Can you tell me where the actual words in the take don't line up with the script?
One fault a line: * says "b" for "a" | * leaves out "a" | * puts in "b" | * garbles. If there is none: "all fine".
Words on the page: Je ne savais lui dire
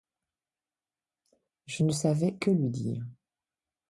* puts in "que"